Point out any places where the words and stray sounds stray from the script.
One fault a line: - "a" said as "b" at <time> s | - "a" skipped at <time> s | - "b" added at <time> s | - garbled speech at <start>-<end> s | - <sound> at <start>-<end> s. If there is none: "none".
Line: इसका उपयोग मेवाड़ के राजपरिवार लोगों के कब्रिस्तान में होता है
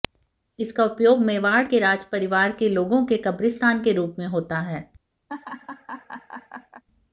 - "के" added at 2.5 s
- "के रूप" added at 3.8 s
- laugh at 5.3-6.8 s